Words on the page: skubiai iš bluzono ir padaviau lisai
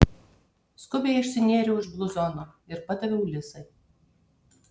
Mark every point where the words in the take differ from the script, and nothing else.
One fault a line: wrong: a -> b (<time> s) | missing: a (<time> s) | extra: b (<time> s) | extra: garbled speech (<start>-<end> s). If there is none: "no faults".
extra: išsinėriau (1.2 s)